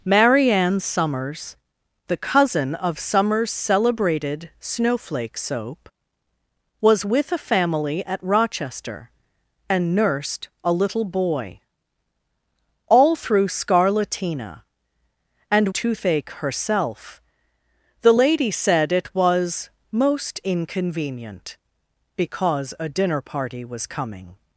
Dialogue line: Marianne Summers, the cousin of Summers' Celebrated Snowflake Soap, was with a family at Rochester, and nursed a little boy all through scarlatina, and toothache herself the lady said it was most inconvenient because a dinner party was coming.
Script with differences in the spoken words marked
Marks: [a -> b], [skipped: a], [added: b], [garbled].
Marianne Summers, the cousin of Summers' Celebrated Snowflake Soap, was with a family at Rochester, and nursed a little boy all through scarlatina, and toothache herself the lady said it was most inconvenient because a dinner party was coming.